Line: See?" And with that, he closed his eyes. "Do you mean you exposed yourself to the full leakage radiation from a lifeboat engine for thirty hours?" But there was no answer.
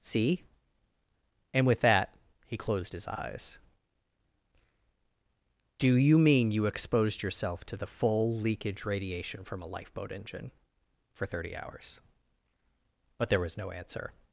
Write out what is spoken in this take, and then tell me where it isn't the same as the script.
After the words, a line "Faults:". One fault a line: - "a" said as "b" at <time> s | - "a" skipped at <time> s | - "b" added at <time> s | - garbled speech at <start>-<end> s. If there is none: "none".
See?" And with that, he closed his eyes. "Do you mean you exposed yourself to the full leakage radiation from a lifeboat engine for thirty hours?" But there was no answer.
Faults:
none